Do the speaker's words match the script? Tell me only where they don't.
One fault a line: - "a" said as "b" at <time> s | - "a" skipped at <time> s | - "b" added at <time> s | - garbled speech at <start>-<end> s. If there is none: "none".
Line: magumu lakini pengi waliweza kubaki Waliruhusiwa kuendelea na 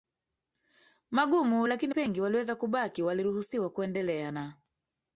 none